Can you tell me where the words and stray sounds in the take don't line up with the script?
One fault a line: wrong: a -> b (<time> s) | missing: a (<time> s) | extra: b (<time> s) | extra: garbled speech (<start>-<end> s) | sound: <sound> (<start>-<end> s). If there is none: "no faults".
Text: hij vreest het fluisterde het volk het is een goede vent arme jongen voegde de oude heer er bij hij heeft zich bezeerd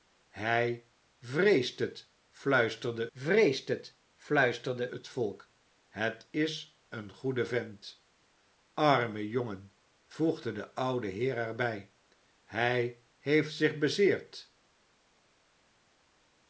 extra: vreest het fluisterde (3.1 s)